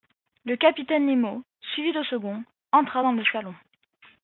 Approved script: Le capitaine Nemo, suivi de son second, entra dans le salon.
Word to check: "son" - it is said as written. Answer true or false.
false